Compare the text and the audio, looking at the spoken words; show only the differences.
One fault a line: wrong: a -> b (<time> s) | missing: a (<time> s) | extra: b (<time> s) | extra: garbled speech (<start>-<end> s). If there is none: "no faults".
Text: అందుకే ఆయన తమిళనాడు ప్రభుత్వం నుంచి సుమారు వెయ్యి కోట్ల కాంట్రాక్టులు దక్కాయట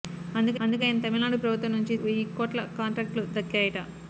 extra: అందుకే (0.6 s)
missing: సుమారు (2.0 s)